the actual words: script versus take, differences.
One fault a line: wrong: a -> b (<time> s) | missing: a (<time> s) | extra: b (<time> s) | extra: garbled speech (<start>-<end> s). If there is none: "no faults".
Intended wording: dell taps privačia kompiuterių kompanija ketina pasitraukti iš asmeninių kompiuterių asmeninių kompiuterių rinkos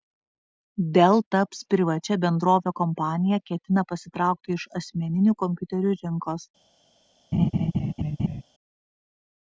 wrong: kompiuterių -> bendrove (2.2 s)
missing: asmeninių kompiuterių (5.9 s)